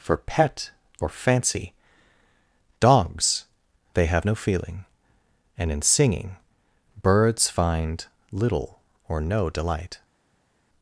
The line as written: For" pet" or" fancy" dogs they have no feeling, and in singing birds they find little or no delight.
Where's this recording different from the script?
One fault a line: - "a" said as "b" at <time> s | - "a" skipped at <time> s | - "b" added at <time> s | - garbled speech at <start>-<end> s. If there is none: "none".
- "they" skipped at 7.5 s